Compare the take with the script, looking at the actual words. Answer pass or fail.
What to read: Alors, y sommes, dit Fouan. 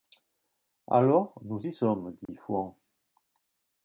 fail